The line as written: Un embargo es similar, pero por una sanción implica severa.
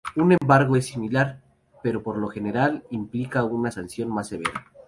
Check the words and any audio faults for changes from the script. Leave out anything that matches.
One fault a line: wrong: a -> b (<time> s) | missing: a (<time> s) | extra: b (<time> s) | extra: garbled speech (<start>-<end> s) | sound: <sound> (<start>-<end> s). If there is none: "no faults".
sound: dropout (0.4-0.4 s)
extra: lo general implica (2.2 s)
wrong: implica -> más (4.1 s)